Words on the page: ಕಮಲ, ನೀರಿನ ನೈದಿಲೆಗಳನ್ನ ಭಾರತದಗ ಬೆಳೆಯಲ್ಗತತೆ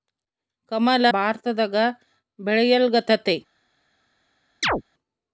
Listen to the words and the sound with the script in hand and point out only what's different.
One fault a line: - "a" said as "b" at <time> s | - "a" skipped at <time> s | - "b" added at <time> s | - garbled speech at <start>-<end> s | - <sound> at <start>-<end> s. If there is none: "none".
- "ನೀರಿನ ನೈದಿಲೆಗಳನ್ನ" skipped at 1.1 s
- chirp at 4.6-4.8 s